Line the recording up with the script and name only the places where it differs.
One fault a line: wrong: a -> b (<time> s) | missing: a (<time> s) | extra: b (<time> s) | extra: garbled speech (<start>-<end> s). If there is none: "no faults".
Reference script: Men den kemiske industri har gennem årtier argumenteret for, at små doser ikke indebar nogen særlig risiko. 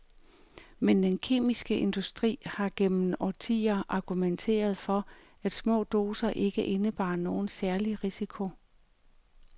no faults